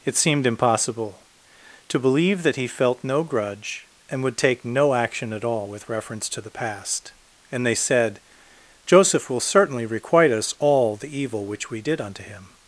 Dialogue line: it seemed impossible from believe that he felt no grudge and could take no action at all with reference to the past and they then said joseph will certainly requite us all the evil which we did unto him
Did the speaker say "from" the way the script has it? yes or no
no